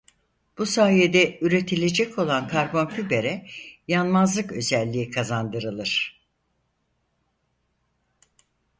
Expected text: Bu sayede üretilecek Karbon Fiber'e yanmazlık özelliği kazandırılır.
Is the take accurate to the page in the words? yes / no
no